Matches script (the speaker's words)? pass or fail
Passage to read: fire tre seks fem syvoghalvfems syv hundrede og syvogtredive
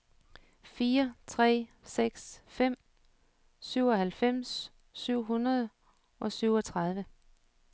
pass